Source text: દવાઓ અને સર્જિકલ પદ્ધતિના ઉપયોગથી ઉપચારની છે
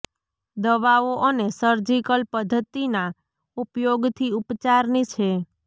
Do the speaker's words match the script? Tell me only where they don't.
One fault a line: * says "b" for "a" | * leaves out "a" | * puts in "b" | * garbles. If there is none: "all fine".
all fine